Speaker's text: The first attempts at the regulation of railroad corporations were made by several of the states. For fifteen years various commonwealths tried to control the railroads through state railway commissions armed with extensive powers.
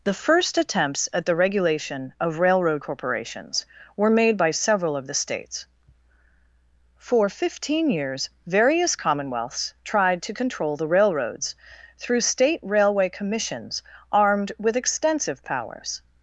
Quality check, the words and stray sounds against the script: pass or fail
pass